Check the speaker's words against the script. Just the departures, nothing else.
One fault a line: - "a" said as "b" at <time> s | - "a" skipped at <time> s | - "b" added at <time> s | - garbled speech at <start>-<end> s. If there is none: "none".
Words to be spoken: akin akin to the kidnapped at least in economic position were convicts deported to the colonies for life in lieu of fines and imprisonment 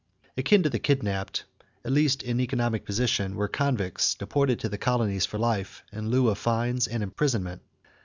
- "akin" skipped at 0.6 s